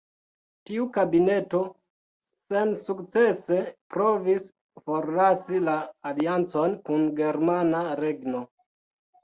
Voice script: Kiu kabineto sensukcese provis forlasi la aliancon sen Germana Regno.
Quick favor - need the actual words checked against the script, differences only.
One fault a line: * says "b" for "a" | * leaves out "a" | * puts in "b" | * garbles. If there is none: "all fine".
* says "Tiu" for "Kiu"
* says "kun" for "sen"